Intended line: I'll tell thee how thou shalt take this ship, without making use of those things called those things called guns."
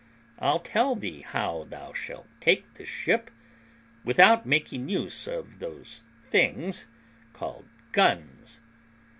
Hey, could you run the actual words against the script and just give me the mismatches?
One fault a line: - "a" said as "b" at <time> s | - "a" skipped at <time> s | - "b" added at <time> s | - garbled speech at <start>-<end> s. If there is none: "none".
- "those things called" skipped at 7.7 s